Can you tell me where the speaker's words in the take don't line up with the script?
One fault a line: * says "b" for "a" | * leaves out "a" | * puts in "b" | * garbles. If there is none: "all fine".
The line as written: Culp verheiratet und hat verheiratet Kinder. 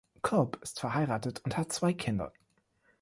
* puts in "ist"
* says "zwei" for "verheiratet"